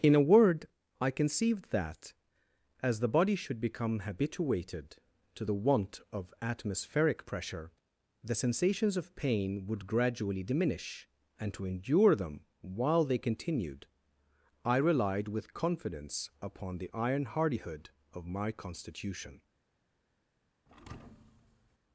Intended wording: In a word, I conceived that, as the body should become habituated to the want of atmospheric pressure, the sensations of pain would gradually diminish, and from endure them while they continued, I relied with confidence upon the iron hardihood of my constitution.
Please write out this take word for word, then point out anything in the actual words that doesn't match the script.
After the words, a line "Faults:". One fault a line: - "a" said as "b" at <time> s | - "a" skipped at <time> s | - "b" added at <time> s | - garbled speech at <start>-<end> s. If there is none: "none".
In a word, I conceived that, as the body should become habituated to the want of atmospheric pressure, the sensations of pain would gradually diminish, and to endure them while they continued, I relied with confidence upon the iron hardihood of my constitution.
Faults:
- "from" said as "to" at 11.5 s